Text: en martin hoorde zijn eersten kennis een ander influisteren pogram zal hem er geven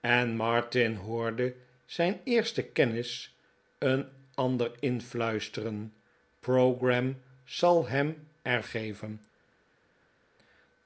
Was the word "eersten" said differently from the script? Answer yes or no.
no